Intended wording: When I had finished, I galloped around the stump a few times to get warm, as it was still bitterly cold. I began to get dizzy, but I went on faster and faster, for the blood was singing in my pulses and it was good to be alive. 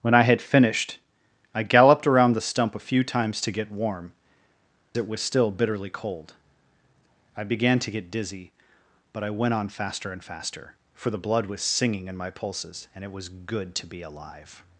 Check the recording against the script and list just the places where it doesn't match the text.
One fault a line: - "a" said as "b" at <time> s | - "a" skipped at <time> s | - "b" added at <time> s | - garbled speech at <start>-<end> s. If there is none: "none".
- "as" skipped at 4.1 s